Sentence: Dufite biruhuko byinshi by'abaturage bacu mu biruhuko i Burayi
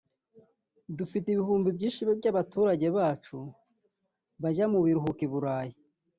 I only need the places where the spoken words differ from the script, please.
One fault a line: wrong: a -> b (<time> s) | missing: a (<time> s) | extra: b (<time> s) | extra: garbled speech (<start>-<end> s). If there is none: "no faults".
wrong: biruhuko -> ibihumbi (1.3 s)
extra: bajya (4.4 s)